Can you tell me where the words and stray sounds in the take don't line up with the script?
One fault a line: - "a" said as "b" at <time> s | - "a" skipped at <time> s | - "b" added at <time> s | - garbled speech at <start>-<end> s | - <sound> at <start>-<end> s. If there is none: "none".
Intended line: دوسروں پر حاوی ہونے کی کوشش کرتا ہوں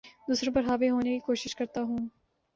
none